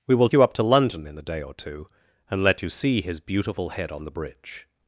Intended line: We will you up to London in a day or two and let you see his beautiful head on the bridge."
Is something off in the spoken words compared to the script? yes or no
no